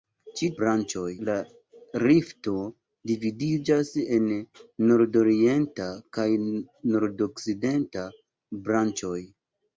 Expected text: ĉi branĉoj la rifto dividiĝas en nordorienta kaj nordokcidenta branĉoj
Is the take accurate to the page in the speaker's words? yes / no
yes